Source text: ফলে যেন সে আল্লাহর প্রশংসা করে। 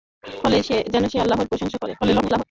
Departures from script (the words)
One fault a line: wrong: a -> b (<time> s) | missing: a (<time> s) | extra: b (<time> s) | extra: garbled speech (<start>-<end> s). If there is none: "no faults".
extra: garbled speech (2.0-2.4 s)